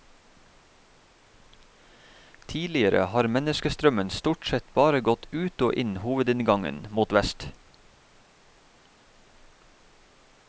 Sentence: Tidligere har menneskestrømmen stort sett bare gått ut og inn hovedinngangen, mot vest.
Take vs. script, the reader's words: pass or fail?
pass